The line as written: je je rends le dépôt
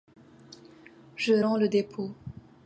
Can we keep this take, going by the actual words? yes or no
no